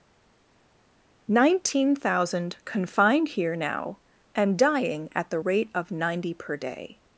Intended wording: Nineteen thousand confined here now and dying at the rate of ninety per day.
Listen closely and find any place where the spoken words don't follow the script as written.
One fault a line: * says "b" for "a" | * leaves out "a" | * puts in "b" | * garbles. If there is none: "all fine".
all fine